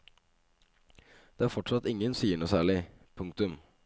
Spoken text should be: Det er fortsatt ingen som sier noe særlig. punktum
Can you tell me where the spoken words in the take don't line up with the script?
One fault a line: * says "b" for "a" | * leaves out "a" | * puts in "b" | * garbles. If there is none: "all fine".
* leaves out "som"